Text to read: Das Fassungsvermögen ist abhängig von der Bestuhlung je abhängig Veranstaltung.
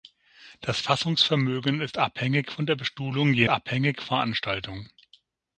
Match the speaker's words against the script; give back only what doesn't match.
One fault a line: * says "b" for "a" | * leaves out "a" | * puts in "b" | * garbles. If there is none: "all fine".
all fine